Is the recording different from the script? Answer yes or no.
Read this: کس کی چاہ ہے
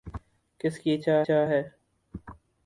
yes